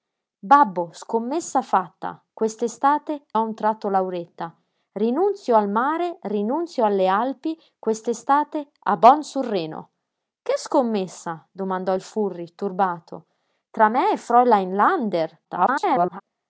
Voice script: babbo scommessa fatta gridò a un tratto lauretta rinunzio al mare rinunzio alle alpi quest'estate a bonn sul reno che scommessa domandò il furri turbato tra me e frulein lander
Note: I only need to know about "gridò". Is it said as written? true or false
false